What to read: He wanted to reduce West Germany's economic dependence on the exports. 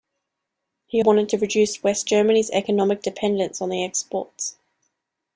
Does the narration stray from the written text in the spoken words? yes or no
no